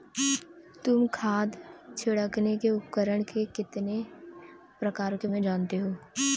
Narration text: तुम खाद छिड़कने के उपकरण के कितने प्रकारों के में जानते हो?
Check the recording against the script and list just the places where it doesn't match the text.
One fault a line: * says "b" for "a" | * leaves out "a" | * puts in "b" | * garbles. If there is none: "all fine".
all fine